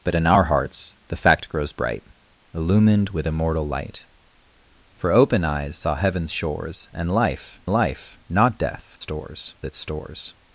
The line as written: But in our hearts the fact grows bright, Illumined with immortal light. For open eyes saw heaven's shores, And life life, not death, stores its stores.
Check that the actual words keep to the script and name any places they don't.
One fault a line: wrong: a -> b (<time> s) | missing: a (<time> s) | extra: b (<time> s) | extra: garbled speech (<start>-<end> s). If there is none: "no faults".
no faults